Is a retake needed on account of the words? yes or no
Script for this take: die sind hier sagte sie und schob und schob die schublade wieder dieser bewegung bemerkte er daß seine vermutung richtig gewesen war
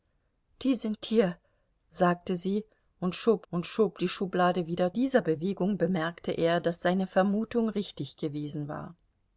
no